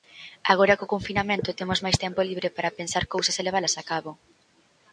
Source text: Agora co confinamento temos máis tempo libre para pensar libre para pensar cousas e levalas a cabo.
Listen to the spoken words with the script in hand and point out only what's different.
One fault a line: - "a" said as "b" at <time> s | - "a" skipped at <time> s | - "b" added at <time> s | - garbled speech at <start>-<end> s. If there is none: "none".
- "libre para pensar" skipped at 3.0 s